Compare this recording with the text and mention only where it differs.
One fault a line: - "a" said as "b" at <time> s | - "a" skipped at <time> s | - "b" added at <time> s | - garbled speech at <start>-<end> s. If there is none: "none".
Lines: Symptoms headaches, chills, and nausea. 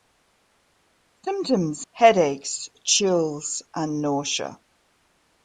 none